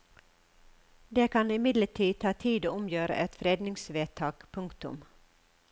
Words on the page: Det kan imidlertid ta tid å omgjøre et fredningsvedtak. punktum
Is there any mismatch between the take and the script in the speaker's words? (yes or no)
no